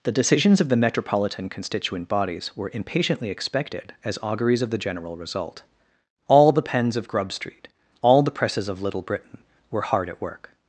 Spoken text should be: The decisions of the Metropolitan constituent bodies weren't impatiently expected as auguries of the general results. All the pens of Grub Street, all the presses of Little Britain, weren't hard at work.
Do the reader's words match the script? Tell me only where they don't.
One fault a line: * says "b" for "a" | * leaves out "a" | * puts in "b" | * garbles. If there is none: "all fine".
* says "were" for "weren't"
* says "result" for "results"
* says "were" for "weren't"